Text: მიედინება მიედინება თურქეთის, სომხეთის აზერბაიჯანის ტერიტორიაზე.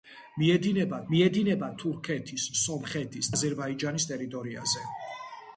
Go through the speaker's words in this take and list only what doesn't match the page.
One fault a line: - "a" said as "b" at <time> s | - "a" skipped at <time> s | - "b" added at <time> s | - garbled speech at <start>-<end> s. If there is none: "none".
none